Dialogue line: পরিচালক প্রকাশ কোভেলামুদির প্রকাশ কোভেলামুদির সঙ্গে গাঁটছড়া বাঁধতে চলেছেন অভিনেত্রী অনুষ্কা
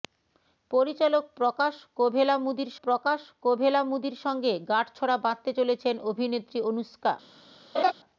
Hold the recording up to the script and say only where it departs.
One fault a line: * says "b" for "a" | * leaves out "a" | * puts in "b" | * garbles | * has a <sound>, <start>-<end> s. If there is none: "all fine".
* has a laugh, 7.7-7.9 s